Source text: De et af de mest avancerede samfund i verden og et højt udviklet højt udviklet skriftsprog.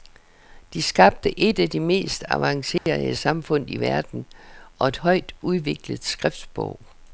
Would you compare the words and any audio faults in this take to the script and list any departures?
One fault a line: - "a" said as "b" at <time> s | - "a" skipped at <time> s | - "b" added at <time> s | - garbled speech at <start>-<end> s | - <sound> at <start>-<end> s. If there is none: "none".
- "skabte" added at 0.8 s
- dropout at 2.8-2.9 s
- "højt udviklet" skipped at 6.0 s